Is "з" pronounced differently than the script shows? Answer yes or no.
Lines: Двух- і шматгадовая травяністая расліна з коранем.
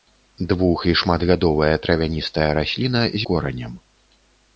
no